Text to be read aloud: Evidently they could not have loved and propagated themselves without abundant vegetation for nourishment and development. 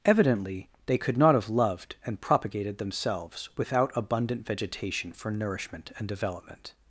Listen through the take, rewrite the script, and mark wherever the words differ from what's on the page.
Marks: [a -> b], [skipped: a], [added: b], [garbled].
Evidently they could not have loved and propagated themselves without abundant vegetation for nourishment and development.